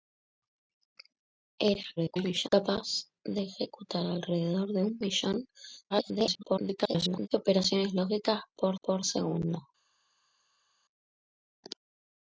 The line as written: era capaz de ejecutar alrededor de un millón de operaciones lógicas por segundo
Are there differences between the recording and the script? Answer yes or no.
yes